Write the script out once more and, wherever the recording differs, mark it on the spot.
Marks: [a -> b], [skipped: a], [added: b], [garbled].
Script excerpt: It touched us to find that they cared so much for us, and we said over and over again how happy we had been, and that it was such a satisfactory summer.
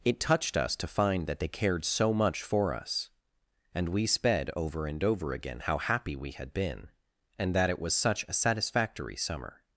It touched us to find that they cared so much for us, and we [said -> sped] over and over again how happy we had been, and that it was such a satisfactory summer.